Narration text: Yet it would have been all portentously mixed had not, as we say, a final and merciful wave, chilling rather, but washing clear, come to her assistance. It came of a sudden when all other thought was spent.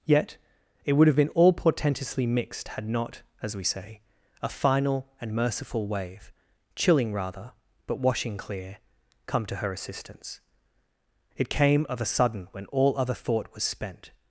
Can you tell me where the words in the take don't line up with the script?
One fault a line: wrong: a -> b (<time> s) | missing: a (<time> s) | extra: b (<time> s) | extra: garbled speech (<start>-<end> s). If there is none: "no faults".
no faults